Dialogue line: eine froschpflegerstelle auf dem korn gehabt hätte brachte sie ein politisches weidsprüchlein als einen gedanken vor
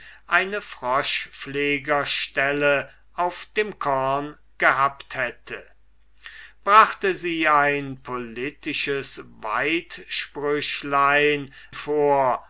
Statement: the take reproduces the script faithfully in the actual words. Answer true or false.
false